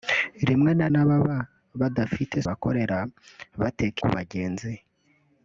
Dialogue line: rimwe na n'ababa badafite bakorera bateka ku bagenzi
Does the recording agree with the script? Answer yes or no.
yes